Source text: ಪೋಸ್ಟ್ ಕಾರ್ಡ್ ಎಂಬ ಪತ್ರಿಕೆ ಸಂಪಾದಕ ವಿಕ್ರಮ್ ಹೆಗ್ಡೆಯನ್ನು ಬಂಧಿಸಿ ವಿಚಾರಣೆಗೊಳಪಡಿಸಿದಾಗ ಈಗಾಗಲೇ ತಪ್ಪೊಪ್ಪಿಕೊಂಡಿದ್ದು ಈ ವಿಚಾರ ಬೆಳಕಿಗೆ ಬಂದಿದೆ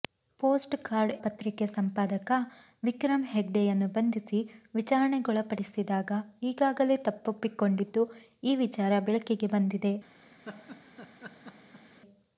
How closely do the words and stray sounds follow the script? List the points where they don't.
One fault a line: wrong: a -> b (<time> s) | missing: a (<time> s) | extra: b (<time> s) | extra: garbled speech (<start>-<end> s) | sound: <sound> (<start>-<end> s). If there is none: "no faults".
missing: ಎಂಬ (1.1 s)
sound: laugh (10.4-12.0 s)